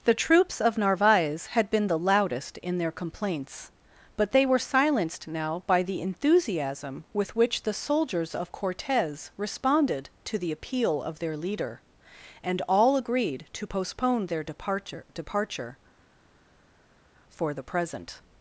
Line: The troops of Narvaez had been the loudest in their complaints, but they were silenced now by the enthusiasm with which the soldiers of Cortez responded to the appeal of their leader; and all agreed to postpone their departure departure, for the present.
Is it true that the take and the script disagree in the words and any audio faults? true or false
false